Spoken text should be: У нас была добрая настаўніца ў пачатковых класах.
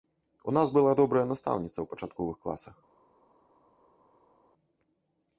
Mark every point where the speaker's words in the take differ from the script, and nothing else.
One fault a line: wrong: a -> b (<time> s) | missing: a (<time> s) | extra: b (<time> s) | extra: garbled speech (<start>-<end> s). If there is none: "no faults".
no faults